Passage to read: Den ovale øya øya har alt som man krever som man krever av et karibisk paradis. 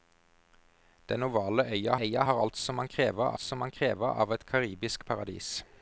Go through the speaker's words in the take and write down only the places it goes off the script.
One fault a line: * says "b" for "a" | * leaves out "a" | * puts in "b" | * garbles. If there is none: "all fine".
all fine